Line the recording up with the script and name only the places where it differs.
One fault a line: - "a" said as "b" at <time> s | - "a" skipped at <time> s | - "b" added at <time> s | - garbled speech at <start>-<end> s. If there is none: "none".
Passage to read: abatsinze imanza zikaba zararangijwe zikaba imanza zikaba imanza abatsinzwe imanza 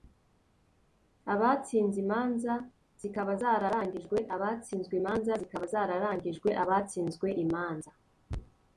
- "zikaba" said as "abatsinzwe" at 4.3 s
- "imanza" said as "zararangijwe" at 5.7 s